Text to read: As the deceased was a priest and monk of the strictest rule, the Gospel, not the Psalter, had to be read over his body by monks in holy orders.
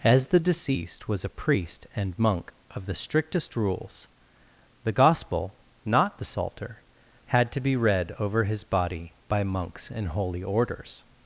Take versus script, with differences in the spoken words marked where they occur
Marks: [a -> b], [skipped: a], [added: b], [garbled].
As the deceased was a priest and monk of the strictest [rule, -> rules] the Gospel, not the Psalter, had to be read over his body by monks in holy orders.